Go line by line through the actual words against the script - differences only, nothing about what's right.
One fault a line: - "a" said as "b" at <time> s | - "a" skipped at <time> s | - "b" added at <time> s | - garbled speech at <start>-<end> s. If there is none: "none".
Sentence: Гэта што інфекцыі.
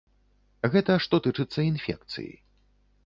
- "тычыцца" added at 1.3 s